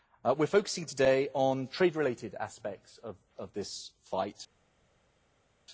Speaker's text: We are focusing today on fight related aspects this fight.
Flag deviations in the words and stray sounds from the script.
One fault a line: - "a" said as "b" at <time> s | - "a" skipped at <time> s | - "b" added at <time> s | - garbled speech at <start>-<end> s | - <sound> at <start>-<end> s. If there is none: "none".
- "fight" said as "trade" at 1.7 s
- "of" added at 3.0 s